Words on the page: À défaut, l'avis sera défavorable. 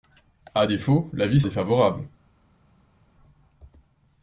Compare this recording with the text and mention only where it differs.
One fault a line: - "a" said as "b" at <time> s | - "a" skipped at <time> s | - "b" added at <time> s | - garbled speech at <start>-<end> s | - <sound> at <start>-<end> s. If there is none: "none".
- "sera" skipped at 1.4 s